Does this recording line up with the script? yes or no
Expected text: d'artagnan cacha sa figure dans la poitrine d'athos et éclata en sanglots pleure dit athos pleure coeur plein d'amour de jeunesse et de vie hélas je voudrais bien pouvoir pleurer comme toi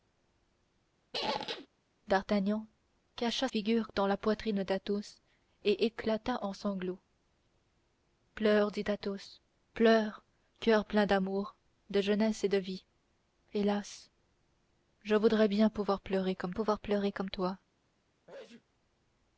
no